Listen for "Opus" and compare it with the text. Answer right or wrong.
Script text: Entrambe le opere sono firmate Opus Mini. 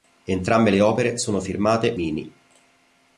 wrong